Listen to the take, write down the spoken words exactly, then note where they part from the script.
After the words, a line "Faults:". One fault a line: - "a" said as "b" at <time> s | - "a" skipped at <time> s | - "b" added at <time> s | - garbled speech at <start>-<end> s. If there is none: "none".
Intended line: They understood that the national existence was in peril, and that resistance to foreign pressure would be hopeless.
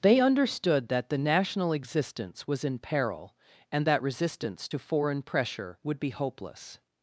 They understood that the national existence was in peril, and that resistance to foreign pressure would be hopeless.
Faults:
none